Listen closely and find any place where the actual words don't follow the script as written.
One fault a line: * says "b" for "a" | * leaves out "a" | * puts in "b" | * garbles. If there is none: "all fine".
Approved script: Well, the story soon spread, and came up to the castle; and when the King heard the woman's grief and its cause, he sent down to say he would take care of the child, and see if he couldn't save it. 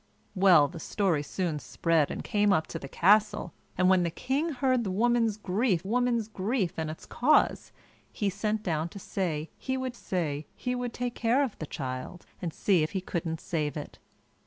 * puts in "woman's grief"
* puts in "say he would"